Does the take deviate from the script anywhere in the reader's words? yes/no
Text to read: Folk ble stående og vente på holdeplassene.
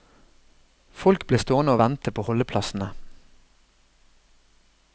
no